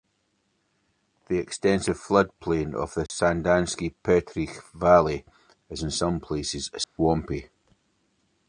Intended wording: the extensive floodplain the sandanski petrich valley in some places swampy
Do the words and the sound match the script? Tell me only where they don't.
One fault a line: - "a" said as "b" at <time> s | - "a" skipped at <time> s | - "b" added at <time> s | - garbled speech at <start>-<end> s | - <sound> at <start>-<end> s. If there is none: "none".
- "of" added at 2.7 s
- dropout at 3.1-3.1 s
- "is" added at 5.7 s
- dropout at 6.8-7.0 s